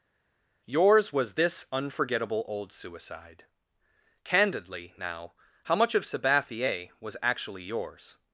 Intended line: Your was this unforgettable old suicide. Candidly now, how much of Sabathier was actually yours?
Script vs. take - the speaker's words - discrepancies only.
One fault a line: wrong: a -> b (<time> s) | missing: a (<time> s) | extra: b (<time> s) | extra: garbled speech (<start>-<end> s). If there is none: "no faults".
wrong: Your -> Yours (0.7 s)